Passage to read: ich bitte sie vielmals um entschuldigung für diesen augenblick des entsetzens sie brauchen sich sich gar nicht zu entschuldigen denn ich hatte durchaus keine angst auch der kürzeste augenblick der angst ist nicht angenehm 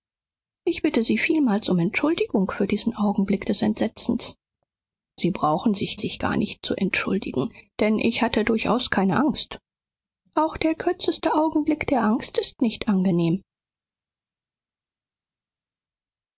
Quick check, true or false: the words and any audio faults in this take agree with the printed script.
true